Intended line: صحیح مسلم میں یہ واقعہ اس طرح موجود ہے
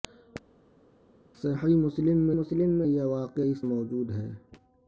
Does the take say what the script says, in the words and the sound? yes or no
no